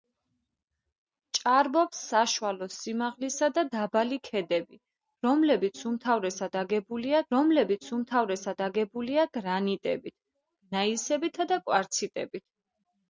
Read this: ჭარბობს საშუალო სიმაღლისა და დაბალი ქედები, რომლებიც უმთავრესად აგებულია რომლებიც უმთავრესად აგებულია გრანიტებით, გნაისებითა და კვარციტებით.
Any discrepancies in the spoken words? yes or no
no